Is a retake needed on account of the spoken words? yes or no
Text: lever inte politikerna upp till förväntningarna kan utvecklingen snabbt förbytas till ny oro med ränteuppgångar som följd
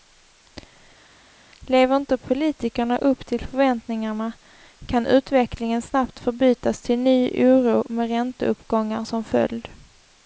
no